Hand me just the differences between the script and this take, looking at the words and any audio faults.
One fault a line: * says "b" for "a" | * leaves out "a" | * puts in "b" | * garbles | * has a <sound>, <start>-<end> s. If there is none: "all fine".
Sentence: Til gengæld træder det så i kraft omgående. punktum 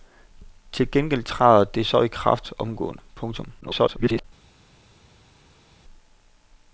* garbles